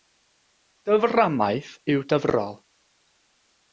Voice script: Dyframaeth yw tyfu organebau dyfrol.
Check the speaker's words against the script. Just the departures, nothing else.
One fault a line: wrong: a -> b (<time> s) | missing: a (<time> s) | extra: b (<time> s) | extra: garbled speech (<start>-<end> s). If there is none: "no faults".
missing: tyfu organebau (2.0 s)